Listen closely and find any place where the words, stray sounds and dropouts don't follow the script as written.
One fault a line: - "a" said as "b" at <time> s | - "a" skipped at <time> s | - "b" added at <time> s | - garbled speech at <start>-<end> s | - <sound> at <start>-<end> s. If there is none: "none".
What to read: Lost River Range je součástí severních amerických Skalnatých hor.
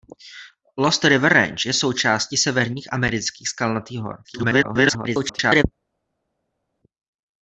- garbled speech at 4.2-5.6 s